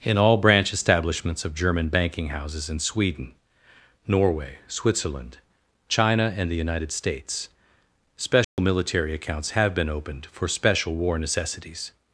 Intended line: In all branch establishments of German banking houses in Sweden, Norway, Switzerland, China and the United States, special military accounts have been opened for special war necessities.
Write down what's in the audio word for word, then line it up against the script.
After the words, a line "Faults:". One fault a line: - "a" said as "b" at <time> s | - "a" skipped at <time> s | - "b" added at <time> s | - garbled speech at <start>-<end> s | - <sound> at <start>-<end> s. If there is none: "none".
In all branch establishments of German banking houses in Sweden, Norway, Switzerland, China and the United States, special military accounts have been opened for special war necessities.
Faults:
- dropout at 8.4-8.6 s